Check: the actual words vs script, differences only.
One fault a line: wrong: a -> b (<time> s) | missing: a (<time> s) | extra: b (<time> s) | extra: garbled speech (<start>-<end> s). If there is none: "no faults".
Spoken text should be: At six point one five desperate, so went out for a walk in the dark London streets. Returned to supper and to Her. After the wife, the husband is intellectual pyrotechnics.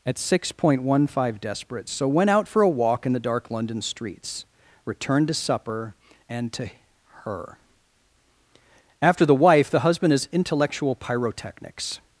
no faults